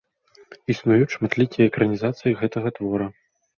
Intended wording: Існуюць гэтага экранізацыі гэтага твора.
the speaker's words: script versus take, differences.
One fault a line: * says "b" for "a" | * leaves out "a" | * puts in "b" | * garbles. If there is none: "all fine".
* says "шматлікія" for "гэтага"